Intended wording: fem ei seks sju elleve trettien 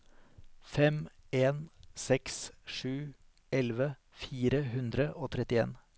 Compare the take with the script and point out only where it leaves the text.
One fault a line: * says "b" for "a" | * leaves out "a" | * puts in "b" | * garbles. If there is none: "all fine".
* says "en" for "ei"
* puts in "fire hundre og"